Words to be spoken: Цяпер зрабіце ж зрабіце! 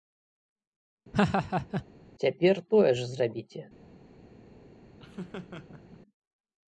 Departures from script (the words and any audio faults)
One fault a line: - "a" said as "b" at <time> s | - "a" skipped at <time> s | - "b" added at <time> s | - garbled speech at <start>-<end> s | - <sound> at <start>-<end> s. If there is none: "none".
- laugh at 1.1-1.9 s
- "зрабіце" said as "тое" at 2.8 s
- laugh at 5.0-6.0 s